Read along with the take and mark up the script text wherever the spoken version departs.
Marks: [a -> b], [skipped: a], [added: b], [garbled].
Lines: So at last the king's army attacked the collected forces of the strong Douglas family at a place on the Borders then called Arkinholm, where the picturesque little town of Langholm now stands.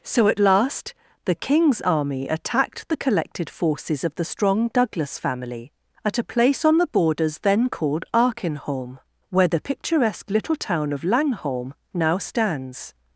So at last the king's army attacked the collected forces of the strong Douglas family at a place on the Borders then called Arkinholm, where the picturesque little town of Langholm now stands.